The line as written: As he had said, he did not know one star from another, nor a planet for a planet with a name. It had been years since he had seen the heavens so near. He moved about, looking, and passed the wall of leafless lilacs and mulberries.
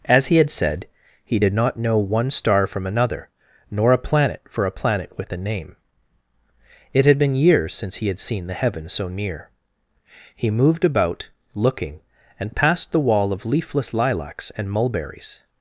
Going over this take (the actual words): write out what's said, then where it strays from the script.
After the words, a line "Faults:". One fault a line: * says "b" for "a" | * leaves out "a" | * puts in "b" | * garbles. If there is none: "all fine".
As he had said, he did not know one star from another, nor a planet for a planet with a name. It had been years since he had seen the heavens so near. He moved about, looking, and passed the wall of leafless lilacs and mulberries.
Faults:
all fine